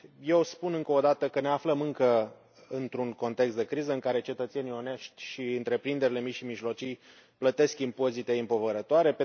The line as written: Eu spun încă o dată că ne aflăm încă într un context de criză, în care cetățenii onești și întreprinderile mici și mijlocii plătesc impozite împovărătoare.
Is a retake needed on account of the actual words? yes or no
no